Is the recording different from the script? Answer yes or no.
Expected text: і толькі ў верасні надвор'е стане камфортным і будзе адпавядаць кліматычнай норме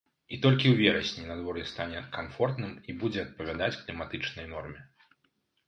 no